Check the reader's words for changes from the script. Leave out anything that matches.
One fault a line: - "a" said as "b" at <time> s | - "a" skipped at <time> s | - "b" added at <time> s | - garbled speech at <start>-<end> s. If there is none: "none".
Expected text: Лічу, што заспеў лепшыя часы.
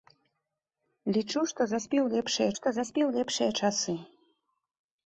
- "што заспеў лепшыя" added at 2.6 s